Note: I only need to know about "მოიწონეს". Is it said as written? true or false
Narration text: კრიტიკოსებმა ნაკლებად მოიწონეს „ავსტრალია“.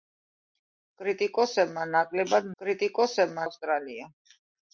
false